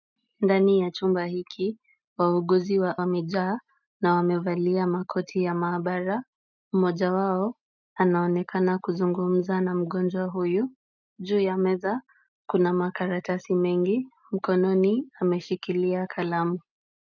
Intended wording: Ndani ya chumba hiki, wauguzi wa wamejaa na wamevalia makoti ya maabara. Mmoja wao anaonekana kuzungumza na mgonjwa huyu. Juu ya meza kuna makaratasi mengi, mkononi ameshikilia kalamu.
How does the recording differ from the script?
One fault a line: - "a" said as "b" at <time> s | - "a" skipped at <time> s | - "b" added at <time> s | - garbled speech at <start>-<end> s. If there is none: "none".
none